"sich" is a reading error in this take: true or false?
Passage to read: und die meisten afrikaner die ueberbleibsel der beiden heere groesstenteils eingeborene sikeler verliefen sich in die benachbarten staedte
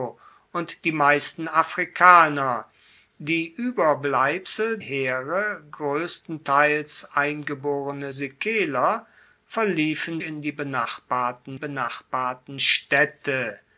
true